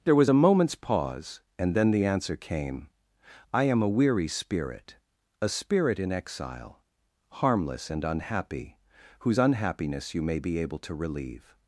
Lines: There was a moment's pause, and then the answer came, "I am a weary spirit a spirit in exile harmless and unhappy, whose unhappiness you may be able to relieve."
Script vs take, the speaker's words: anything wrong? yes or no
no